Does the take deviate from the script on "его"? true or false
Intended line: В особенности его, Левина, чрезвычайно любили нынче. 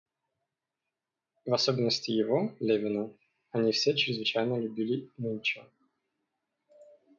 false